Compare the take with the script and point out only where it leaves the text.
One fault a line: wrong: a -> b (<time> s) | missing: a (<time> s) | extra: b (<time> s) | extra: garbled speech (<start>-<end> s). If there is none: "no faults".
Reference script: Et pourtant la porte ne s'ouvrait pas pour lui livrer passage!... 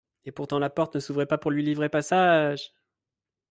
no faults